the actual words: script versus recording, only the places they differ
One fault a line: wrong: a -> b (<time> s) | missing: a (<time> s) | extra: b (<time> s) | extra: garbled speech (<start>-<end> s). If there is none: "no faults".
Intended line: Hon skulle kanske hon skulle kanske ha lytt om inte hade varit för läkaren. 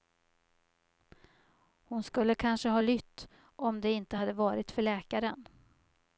missing: hon skulle kanske (2.7 s)
extra: det (3.8 s)